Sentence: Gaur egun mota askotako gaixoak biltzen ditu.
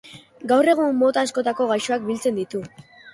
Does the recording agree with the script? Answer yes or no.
yes